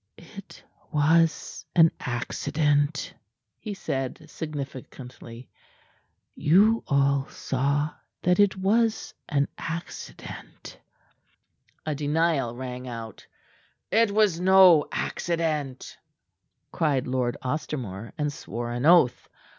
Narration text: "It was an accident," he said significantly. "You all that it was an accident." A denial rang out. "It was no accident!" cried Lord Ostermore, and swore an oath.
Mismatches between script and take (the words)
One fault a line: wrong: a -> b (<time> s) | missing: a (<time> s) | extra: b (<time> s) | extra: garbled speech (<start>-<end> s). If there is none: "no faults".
extra: saw (7.3 s)